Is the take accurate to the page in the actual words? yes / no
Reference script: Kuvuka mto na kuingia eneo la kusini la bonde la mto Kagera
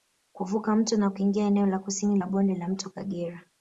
yes